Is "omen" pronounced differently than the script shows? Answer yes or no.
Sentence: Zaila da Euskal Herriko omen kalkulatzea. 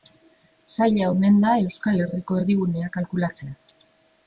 yes